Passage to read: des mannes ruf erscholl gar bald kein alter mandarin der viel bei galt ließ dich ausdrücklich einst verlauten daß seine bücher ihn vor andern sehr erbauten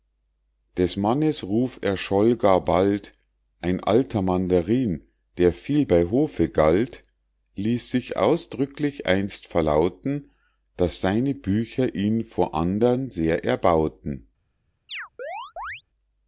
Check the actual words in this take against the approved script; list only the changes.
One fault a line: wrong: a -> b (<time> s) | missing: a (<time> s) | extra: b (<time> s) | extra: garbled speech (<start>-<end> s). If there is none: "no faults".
wrong: kein -> ein (3.6 s)
extra: hofe (6.0 s)
wrong: dich -> sich (7.9 s)